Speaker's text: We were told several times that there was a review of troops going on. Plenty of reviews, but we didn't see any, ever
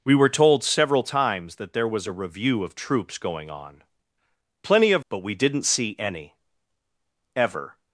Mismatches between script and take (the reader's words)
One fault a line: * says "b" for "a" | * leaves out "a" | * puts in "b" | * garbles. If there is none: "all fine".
* leaves out "reviews"